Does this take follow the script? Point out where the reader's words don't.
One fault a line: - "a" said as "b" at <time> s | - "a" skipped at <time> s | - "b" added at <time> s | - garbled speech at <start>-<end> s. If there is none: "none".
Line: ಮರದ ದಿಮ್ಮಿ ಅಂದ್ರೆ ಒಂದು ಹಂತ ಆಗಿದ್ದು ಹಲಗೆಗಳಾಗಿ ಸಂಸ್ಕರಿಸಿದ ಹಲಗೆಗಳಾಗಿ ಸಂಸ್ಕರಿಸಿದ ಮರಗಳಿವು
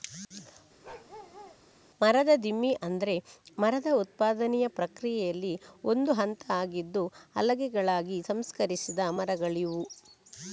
- "ಮರದ ಉತ್ಪಾದನೆಯ ಪ್ರಕ್ರಿಯೆಯಲ್ಲಿ" added at 3.6 s
- "ಹಲಗೆಗಳಾಗಿ ಸಂಸ್ಕರಿಸಿದ" skipped at 9.1 s